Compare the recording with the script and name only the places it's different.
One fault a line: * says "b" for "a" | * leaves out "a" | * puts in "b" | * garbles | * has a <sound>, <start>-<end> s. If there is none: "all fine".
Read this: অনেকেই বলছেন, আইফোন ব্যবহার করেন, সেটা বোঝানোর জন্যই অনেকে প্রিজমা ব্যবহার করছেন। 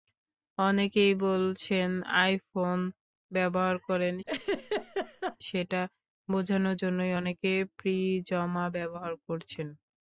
* has a laugh, 4.3-5.4 s